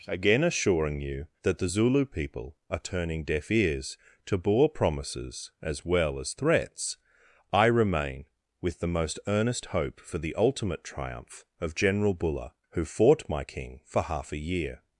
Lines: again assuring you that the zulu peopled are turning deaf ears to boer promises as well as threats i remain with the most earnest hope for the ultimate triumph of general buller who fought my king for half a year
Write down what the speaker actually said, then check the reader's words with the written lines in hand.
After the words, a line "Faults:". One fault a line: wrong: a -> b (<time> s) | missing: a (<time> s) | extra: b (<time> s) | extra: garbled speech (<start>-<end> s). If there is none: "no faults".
again assuring you that the zulu people are turning deaf ears to boer promises as well as threats i remain with the most earnest hope for the ultimate triumph of general buller who fought my king for half a year
Faults:
wrong: peopled -> people (2.1 s)